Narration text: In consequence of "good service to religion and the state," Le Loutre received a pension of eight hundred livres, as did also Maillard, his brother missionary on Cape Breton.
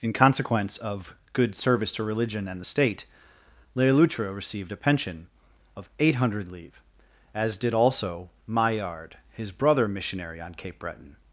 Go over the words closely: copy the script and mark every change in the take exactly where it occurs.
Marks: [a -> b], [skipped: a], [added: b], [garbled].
In consequence of "good service to religion and the state," Le Loutre received a pension of eight hundred livres, as did also Maillard, his brother missionary on Cape Breton.